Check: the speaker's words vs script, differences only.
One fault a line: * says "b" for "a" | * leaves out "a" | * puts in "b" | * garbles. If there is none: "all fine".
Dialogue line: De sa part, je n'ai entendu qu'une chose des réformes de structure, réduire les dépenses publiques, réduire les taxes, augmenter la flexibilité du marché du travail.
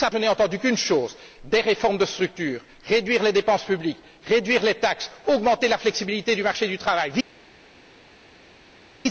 * leaves out "part"